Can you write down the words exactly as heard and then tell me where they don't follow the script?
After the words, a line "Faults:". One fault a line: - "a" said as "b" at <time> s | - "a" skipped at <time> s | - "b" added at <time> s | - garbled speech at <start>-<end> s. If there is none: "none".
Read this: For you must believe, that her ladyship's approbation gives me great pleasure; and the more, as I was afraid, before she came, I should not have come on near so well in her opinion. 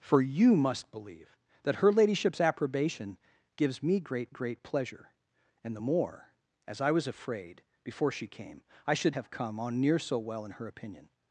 For you must believe, that her ladyship's approbation gives me great great pleasure; and the more, as I was afraid, before she came, I should have come on near so well in her opinion.
Faults:
- "great" added at 4.3 s
- "not" skipped at 9.2 s